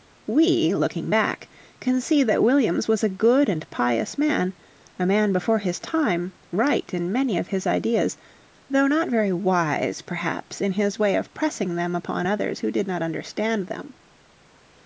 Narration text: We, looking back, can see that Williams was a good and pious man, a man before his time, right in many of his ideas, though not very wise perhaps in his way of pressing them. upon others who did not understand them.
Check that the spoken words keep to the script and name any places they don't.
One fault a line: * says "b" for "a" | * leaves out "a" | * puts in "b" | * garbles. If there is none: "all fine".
all fine